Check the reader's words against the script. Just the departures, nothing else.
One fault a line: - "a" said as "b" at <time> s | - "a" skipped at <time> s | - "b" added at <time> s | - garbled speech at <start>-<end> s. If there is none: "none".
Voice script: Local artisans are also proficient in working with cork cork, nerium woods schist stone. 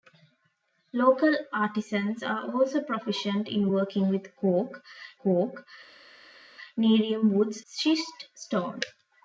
none